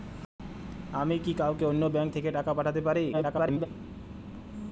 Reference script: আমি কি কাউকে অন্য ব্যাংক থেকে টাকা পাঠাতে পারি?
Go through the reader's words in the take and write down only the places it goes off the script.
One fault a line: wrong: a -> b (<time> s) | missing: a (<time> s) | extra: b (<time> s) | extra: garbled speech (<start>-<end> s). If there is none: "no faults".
extra: garbled speech (3.1-3.7 s)